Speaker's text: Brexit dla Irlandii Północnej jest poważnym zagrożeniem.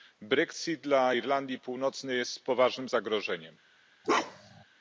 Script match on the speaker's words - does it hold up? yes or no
yes